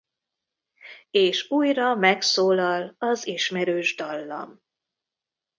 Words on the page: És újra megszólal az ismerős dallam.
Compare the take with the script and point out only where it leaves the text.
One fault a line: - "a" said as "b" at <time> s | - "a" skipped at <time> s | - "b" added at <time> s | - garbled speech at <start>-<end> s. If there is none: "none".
none